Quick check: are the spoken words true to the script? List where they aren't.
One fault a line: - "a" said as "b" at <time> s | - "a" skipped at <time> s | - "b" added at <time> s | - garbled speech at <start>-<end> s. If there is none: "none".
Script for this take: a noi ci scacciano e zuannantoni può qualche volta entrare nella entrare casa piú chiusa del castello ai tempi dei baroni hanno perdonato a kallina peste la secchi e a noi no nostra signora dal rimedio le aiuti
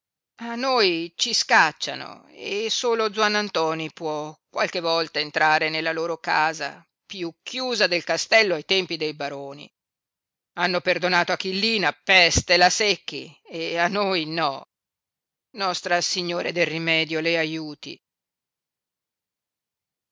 - "solo" added at 2.7 s
- "entrare" said as "loro" at 5.9 s
- "dal" said as "del" at 16.5 s